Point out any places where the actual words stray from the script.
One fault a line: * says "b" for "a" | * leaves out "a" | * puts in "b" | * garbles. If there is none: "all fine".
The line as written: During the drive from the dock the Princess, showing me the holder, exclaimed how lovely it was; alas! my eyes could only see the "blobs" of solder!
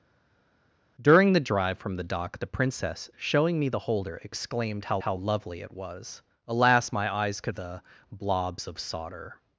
* puts in "how"
* leaves out "only see"